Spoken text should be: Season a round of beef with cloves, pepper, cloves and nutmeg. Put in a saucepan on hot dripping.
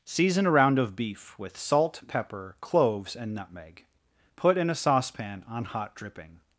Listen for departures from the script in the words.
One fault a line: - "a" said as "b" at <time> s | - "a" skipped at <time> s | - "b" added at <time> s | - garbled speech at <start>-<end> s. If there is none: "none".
- "cloves" said as "salt" at 1.6 s